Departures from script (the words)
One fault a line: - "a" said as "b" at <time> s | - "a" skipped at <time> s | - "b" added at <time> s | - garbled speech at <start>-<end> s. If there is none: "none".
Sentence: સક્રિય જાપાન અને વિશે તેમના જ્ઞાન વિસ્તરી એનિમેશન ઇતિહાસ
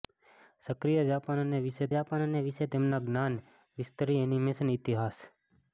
- "જાપાન અને વિશે" added at 1.9 s